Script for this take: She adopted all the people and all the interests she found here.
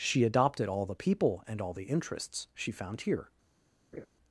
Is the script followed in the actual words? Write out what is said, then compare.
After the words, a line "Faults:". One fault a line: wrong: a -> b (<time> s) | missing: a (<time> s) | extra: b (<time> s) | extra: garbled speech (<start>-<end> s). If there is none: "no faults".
She adopted all the people and all the interests she found here.
Faults:
no faults